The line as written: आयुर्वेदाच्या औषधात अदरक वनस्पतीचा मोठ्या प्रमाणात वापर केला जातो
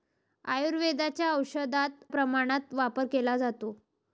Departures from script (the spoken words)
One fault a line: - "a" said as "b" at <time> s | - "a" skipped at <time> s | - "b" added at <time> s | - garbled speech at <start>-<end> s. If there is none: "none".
- "अदरक वनस्पतीचा मोठ्या" skipped at 2.0 s